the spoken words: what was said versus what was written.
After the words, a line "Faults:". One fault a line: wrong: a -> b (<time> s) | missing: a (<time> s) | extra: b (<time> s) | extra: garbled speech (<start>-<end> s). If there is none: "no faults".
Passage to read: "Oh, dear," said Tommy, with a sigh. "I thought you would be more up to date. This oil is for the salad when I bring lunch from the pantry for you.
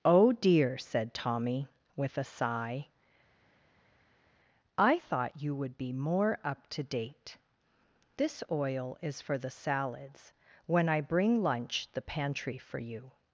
"Oh, dear," said Tommy, with a sigh. "I thought you would be more up to date. This oil is for the salads when I bring lunch the pantry for you.
Faults:
wrong: salad -> salads (9.5 s)
missing: from (11.9 s)